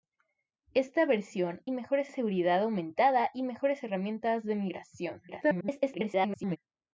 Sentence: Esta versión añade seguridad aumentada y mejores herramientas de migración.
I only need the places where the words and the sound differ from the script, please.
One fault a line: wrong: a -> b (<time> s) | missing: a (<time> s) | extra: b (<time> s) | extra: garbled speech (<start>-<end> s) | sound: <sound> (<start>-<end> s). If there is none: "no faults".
wrong: añade -> mejores (1.7 s)
extra: garbled speech (5.3-6.6 s)